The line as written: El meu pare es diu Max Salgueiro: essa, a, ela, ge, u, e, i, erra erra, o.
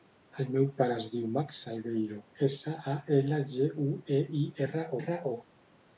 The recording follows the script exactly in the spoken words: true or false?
true